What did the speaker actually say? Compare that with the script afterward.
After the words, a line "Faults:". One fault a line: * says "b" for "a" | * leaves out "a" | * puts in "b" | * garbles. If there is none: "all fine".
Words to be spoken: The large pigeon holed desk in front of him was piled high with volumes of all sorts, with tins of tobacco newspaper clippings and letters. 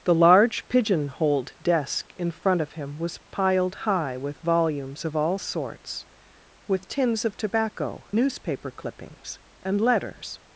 The large pigeon holed desk in front of him was piled high with volumes of all sorts, with tins of tobacco newspaper clippings and letters.
Faults:
all fine